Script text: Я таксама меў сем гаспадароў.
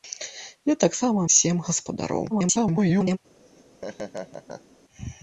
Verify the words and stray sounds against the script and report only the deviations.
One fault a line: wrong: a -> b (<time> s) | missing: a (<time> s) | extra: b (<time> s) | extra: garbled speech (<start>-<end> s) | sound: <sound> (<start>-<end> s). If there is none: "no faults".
missing: меў (1.2 s)
extra: garbled speech (2.3-3.2 s)
sound: laugh (3.4-4.8 s)